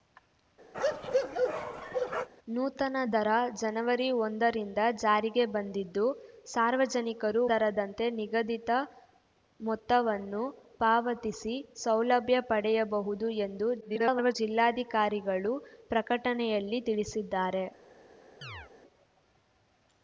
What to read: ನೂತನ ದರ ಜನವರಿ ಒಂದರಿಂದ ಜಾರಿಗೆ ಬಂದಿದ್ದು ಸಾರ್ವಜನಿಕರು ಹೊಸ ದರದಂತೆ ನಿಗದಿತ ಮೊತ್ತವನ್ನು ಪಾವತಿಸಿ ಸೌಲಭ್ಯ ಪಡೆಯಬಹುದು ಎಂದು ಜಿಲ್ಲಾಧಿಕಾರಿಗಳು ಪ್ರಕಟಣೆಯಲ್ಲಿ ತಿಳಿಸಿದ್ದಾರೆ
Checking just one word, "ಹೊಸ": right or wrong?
wrong